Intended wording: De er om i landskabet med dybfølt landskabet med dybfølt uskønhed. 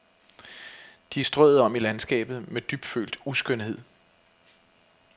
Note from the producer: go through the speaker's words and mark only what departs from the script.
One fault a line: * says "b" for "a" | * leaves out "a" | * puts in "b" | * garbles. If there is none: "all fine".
* puts in "strøet"
* leaves out "landskabet med dybfølt"